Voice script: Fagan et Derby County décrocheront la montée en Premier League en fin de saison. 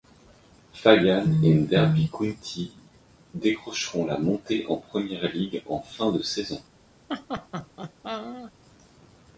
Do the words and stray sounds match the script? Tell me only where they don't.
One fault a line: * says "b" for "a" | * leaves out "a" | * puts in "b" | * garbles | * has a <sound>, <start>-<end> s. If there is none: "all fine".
* has a laugh, 7.1-8.5 s